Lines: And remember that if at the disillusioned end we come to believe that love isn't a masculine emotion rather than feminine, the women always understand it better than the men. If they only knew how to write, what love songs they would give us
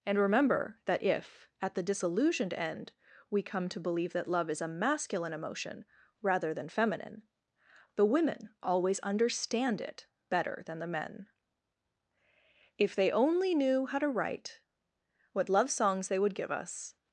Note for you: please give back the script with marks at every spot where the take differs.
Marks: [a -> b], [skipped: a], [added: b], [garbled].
And remember that if at the disillusioned end we come to believe that love [isn't -> is] a masculine emotion rather than feminine, the women always understand it better than the men. If they only knew how to write, what love songs they would give us